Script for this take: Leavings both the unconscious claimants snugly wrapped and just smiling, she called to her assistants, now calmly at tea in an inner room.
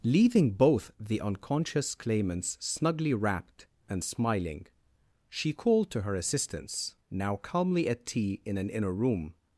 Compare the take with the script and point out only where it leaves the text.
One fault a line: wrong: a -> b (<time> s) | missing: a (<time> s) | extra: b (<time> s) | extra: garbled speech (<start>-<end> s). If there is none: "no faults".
wrong: Leavings -> Leaving (0.0 s)
missing: just (4.0 s)